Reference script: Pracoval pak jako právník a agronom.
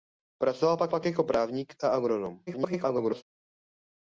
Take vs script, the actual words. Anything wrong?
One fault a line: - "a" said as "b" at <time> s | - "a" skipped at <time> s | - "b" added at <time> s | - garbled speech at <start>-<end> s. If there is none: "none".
- "pak" added at 0.9 s
- garbled speech at 2.5-3.2 s